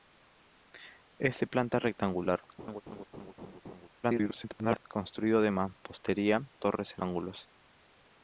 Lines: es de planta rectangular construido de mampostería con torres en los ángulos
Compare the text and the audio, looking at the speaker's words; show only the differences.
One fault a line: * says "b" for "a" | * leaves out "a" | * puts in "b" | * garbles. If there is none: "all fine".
* garbles
* leaves out "con"
* leaves out "los"